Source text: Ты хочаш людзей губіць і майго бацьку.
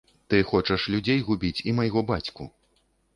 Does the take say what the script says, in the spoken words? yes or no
yes